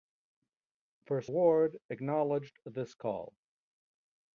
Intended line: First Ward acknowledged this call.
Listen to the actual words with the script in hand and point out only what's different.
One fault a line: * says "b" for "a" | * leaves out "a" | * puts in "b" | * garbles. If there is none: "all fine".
all fine